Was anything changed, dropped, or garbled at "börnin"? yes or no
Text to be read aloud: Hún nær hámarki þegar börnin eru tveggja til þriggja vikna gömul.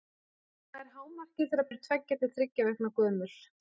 yes